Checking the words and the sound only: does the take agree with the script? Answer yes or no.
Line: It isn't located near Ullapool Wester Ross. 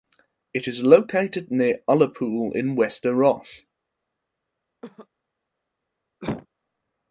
no